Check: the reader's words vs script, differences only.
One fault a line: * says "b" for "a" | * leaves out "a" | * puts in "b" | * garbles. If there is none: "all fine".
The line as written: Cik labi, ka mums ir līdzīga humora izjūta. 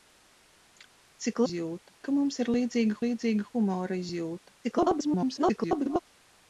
* says "izjūta" for "labi"
* puts in "līdzīga"
* garbles